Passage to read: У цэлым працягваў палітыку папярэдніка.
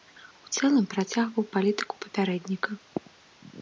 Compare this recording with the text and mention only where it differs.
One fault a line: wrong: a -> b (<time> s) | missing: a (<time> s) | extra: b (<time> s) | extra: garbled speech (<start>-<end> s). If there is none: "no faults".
no faults